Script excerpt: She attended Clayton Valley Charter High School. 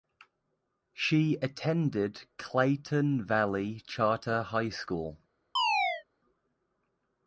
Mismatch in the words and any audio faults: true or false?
true